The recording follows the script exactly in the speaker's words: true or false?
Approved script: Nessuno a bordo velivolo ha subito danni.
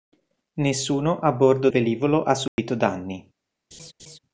true